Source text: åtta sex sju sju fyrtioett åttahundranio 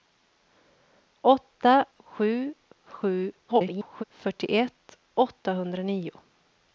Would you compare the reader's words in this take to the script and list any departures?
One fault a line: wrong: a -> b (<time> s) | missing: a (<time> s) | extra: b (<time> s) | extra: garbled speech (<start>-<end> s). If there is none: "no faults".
missing: sex (1.9 s)
extra: garbled speech (3.5-4.0 s)